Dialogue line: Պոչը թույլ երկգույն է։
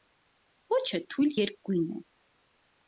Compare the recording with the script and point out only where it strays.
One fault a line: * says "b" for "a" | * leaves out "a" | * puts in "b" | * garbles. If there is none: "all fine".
all fine